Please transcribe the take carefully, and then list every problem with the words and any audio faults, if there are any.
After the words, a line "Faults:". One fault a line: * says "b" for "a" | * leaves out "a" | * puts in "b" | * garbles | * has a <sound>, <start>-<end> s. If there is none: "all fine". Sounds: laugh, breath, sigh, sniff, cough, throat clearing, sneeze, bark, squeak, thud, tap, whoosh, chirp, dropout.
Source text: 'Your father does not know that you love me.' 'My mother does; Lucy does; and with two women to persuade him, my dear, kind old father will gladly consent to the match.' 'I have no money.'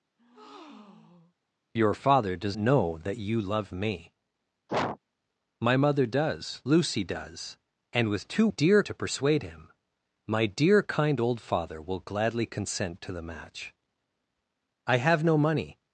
'Your father does know that you love me.' 'My mother does; Lucy does; and with two dear to persuade him, my dear, kind old father will gladly consent to the match.' 'I have no money.'
Faults:
* has a breath, 0.2-1.4 s
* leaves out "not"
* has a sneeze, 4.7-5.0 s
* says "dear" for "women"